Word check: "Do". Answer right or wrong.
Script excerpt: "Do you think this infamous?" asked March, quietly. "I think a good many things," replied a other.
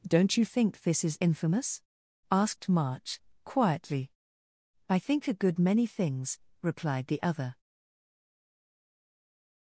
wrong